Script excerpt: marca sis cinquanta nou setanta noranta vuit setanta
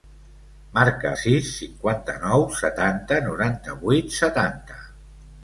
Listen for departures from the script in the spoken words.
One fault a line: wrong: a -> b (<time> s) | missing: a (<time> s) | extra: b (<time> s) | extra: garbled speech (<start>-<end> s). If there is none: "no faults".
no faults